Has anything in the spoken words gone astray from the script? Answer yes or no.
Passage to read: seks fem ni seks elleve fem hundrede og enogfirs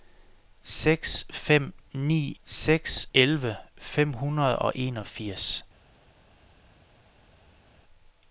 no